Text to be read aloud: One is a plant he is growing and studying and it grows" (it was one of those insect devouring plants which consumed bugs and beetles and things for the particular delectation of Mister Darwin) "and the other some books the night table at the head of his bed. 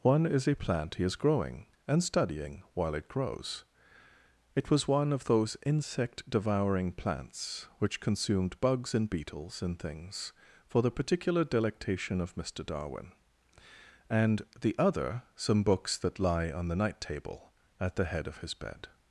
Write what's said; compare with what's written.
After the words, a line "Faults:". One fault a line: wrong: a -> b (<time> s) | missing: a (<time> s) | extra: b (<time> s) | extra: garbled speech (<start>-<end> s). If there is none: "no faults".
One is a plant he is growing and studying while it grows" (it was one of those insect devouring plants which consumed bugs and beetles and things for the particular delectation of Mister Darwin) "and the other some books that lie on the night table at the head of his bed.
Faults:
wrong: and -> while (2.7 s)
extra: that lie on (16.0 s)